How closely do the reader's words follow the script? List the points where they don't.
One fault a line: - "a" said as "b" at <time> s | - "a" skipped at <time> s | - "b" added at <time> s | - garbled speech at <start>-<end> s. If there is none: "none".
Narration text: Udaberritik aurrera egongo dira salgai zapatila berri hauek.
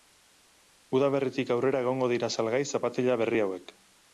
none